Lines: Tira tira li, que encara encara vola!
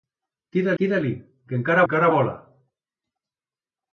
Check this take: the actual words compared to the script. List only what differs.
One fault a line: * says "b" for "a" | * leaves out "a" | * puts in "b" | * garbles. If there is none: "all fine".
all fine